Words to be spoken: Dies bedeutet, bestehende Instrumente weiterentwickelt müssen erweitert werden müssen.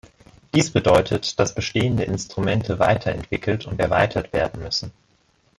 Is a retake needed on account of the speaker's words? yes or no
yes